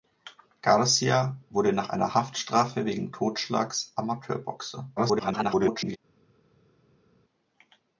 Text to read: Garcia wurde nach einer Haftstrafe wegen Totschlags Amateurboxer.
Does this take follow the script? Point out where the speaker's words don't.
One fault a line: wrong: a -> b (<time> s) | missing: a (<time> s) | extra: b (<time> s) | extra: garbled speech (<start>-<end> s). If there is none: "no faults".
extra: garbled speech (5.0-6.0 s)